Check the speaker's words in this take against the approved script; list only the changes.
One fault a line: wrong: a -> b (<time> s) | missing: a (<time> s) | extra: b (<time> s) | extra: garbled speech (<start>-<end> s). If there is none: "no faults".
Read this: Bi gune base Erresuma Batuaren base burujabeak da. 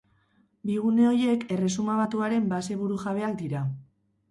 wrong: base -> horiek (1.1 s)
wrong: da -> dira (3.5 s)